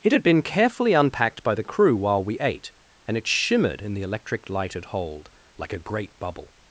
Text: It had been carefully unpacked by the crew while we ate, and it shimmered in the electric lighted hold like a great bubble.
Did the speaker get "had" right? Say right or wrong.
right